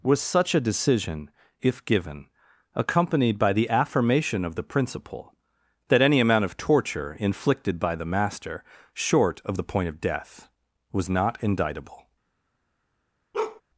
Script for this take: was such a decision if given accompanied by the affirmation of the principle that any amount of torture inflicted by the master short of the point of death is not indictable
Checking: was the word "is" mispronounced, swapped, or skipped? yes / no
yes